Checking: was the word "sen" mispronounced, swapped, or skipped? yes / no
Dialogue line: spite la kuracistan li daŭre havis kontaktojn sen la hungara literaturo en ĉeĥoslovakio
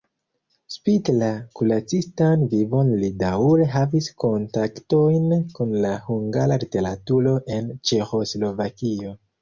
yes